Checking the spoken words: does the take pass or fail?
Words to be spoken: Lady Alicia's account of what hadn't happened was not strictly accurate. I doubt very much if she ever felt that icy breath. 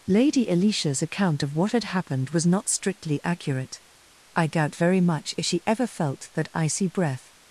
fail